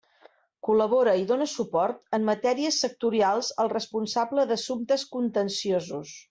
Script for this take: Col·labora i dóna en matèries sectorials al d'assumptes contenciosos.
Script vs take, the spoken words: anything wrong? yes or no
yes